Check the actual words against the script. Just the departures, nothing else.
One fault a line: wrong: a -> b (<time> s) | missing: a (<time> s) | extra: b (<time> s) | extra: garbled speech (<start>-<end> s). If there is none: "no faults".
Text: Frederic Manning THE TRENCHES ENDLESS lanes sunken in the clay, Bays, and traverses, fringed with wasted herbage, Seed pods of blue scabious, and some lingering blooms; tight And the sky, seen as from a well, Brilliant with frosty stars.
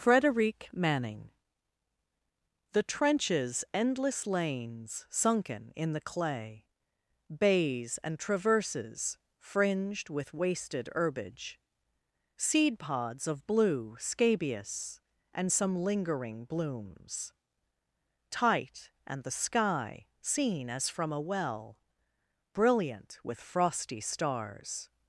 no faults